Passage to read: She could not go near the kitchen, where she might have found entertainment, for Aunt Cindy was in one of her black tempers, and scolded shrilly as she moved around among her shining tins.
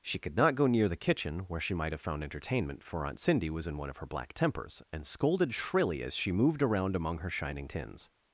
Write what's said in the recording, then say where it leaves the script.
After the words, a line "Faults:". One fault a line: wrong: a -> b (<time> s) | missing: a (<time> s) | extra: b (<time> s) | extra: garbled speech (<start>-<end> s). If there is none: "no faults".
She could not go near the kitchen, where she might have found entertainment, for Aunt Cindy was in one of her black tempers, and scolded shrilly as she moved around among her shining tins.
Faults:
no faults